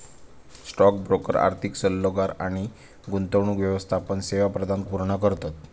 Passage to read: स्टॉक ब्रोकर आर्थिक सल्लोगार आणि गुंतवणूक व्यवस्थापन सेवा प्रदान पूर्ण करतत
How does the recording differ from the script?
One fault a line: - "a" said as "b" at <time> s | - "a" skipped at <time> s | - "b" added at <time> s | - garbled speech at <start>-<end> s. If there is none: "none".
none